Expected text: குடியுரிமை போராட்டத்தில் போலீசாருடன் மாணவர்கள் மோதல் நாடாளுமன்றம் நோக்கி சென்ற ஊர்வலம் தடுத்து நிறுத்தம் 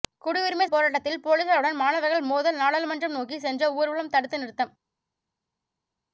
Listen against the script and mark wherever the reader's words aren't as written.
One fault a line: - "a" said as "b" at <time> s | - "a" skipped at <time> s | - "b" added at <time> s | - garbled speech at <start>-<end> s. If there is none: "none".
none